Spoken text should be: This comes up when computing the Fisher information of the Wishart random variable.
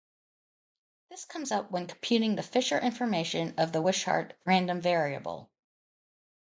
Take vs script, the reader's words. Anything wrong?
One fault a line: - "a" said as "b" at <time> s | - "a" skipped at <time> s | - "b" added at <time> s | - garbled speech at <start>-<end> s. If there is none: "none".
none